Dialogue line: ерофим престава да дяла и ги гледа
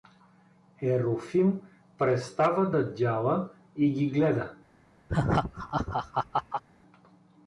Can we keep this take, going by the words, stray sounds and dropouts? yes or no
no